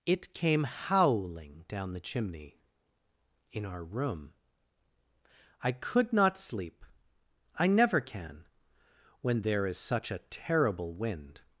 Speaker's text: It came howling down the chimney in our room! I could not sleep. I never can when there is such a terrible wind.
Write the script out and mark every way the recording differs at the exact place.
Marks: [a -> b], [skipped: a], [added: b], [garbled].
It came howling down the chimney in our room! I could not sleep. I never can when there is such a terrible wind.